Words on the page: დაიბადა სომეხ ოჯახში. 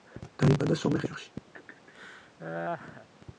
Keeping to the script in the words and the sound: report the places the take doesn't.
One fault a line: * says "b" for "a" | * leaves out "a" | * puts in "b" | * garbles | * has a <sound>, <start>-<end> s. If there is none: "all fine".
* has a laugh, 1.5-3.1 s